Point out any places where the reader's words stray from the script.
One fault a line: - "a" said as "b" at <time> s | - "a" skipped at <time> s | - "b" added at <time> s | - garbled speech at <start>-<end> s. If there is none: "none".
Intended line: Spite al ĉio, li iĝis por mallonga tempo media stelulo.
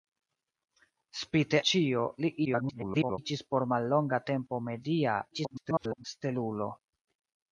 - "al" skipped at 1.6 s
- garbled speech at 2.5-3.2 s
- garbled speech at 5.3-6.0 s